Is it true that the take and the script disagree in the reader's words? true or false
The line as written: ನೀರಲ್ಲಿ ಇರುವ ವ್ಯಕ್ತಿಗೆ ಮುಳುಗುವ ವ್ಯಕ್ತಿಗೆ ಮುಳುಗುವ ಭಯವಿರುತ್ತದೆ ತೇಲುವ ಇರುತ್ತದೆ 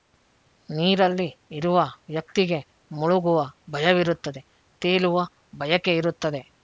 true